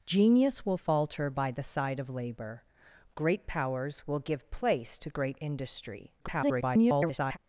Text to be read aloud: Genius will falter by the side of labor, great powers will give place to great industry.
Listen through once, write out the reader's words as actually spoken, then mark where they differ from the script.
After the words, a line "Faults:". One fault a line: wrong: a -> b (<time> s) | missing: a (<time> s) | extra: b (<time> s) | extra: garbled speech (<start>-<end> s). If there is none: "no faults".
Genius will falter by the side of labor, great powers will give place to great industry. [garbled]
Faults:
extra: garbled speech (6.2-7.4 s)